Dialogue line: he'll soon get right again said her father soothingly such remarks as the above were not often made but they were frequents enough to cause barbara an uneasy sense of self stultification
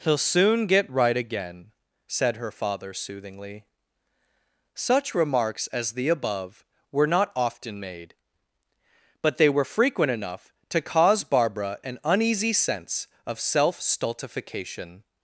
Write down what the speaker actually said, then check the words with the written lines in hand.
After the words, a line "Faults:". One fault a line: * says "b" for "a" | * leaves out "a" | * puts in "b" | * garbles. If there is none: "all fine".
he'll soon get right again said her father soothingly such remarks as the above were not often made but they were frequent enough to cause barbara an uneasy sense of self stultification
Faults:
* says "frequent" for "frequents"